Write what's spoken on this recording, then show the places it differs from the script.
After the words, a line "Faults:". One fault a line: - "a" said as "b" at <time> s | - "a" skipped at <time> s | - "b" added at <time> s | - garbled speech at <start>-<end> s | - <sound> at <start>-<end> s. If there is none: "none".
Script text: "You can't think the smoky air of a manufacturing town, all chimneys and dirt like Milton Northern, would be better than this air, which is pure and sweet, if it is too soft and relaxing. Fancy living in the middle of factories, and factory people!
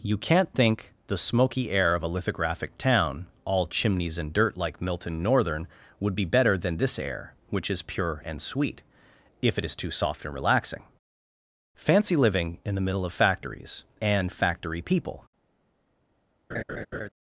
"You can't think the smoky air of a lithographic town, all chimneys and dirt like Milton Northern, would be better than this air, which is pure and sweet, if it is too soft and relaxing. Fancy living in the middle of factories, and factory people!
Faults:
- "manufacturing" said as "lithographic" at 2.1 s
- laugh at 16.5-17.1 s